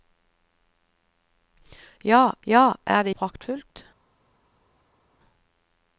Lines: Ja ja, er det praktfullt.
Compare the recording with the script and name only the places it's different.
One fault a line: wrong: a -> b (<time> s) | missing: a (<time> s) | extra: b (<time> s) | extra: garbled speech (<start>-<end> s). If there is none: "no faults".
no faults